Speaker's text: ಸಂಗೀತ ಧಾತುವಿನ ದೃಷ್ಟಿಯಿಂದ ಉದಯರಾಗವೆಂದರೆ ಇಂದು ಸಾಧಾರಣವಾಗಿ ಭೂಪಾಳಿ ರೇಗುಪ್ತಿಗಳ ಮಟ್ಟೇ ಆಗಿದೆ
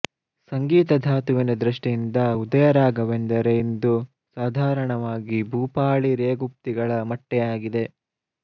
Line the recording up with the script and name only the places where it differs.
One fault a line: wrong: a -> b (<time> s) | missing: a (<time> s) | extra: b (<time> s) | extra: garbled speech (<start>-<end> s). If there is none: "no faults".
no faults